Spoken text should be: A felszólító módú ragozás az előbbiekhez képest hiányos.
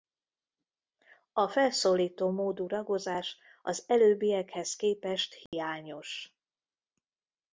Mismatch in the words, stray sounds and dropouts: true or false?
true